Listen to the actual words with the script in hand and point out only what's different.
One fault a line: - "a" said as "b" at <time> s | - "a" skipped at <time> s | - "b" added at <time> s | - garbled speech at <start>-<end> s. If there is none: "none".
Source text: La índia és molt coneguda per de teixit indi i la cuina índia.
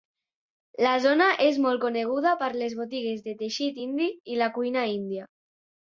- "índia" said as "zona" at 1.0 s
- "les botigues" added at 2.6 s